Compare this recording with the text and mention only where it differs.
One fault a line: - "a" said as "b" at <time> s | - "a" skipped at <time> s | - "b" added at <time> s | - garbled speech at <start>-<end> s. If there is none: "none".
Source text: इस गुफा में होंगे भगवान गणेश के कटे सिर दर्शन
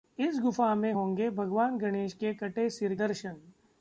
none